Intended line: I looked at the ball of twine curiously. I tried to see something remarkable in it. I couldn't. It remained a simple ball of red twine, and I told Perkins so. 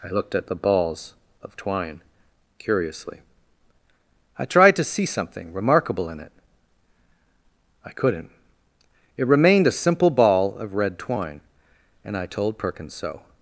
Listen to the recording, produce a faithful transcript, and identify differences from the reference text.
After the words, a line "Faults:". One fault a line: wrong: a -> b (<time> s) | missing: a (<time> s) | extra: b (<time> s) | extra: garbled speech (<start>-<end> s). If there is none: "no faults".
I looked at the balls of twine curiously. I tried to see something remarkable in it. I couldn't. It remained a simple ball of red twine, and I told Perkins so.
Faults:
wrong: ball -> balls (0.6 s)